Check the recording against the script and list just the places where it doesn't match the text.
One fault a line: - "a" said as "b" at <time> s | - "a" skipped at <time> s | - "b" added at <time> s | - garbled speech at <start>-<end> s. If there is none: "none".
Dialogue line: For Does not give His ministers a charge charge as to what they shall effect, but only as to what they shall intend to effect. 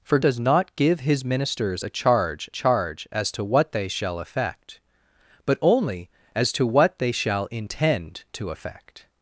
none